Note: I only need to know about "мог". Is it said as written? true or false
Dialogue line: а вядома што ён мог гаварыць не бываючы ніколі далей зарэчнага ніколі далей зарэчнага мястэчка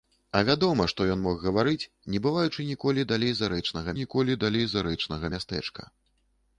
true